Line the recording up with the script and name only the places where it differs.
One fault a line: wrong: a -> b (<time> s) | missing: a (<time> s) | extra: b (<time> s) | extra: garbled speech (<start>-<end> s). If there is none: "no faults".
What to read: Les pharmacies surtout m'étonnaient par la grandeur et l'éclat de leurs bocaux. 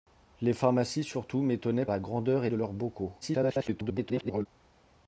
missing: par (1.9 s)
missing: l'éclat (2.5 s)
extra: garbled speech (3.2-4.5 s)